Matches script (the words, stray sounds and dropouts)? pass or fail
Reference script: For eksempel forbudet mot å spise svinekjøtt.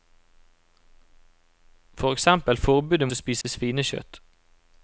fail